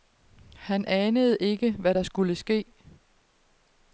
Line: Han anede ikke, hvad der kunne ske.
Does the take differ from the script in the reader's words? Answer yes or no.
yes